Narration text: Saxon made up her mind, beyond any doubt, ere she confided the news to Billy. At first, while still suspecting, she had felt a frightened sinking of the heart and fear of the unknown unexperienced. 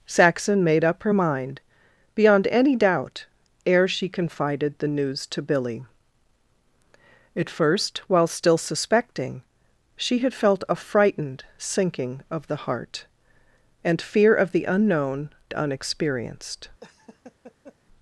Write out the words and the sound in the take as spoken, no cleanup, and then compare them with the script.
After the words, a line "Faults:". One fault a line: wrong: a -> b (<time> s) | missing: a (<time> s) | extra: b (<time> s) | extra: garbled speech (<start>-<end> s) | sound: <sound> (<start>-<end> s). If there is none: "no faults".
Saxon made up her mind, beyond any doubt, ere she confided the news to Billy. At first, while still suspecting, she had felt a frightened sinking of the heart and fear of the unknown unexperienced.
Faults:
sound: laugh (16.8-17.8 s)